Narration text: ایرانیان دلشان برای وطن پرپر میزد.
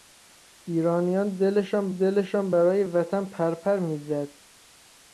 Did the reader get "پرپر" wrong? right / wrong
right